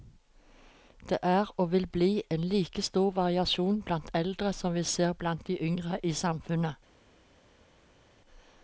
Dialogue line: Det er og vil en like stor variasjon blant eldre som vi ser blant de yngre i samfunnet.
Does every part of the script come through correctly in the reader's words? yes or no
no